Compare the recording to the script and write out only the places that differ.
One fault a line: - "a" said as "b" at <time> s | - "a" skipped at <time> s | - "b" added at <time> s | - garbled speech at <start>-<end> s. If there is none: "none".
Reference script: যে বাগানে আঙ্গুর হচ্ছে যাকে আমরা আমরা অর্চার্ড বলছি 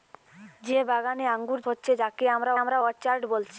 none